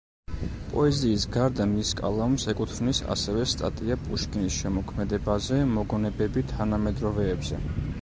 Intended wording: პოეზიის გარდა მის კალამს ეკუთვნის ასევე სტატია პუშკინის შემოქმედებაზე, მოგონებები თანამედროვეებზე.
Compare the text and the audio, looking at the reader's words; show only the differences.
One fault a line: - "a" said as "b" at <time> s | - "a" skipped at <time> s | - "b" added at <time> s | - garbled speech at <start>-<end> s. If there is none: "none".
none